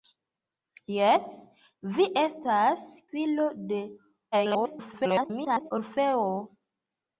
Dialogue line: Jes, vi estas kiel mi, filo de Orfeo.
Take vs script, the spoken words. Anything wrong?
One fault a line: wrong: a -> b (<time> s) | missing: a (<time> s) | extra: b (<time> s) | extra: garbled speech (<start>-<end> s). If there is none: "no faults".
missing: kiel mi (2.9 s)
extra: garbled speech (4.3-5.7 s)